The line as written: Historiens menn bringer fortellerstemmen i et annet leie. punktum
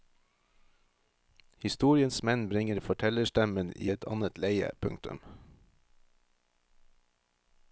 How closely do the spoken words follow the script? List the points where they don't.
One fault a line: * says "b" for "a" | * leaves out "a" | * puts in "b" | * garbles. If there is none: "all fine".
all fine